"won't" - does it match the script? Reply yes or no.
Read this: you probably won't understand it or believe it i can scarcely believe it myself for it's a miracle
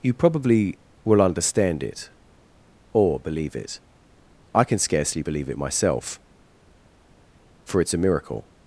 no